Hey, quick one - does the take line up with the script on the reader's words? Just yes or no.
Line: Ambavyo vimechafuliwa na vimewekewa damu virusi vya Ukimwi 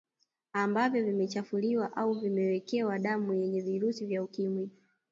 no